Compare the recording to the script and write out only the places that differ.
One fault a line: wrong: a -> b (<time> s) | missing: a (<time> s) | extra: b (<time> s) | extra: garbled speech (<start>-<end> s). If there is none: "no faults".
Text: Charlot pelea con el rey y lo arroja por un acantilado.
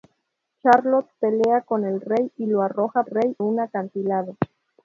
wrong: por -> rey (3.1 s)